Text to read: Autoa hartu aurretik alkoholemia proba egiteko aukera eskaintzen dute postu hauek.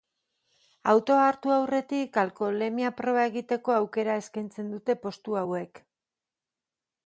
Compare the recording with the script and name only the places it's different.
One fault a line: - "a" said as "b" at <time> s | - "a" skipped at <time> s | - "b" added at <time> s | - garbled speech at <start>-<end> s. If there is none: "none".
none